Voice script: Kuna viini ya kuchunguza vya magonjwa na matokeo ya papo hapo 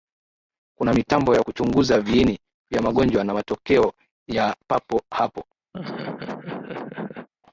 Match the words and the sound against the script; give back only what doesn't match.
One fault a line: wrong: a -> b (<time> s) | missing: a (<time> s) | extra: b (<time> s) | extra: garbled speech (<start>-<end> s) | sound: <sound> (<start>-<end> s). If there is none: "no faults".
wrong: viini -> mitambo (0.9 s)
extra: viini (2.0 s)
sound: laugh (5.7-7.3 s)